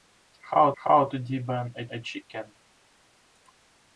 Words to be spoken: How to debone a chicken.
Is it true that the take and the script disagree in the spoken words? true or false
true